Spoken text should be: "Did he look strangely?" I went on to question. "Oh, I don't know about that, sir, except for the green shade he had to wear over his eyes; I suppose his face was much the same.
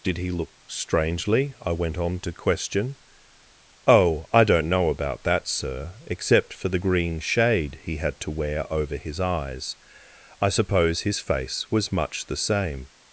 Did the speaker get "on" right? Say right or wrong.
right